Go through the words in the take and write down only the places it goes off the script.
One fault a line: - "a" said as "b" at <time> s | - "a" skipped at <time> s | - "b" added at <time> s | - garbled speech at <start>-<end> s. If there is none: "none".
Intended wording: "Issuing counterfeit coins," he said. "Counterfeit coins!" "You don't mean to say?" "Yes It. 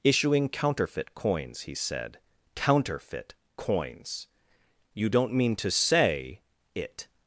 - "Yes" skipped at 6.4 s